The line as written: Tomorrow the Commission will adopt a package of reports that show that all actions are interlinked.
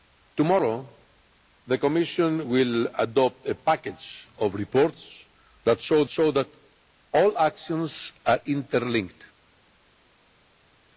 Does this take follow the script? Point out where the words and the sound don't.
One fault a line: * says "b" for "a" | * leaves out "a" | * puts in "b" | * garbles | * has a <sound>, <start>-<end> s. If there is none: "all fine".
* puts in "show"